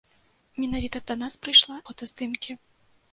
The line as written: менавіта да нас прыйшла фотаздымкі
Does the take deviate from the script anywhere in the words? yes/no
no